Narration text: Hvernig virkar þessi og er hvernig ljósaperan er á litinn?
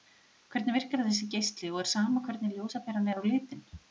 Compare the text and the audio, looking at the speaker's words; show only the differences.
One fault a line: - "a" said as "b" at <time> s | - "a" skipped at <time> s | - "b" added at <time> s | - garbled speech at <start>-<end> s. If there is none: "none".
- "geisli" added at 1.3 s
- "sama" added at 1.9 s